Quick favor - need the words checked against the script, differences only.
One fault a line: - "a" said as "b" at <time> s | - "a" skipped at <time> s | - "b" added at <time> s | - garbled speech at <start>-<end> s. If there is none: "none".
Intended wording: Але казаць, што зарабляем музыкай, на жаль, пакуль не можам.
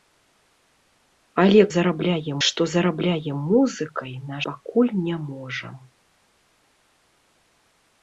- "казаць" said as "зарабляем" at 1.8 s
- "жаль" skipped at 4.4 s